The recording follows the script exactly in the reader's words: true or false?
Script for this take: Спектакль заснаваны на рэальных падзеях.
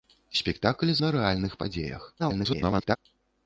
false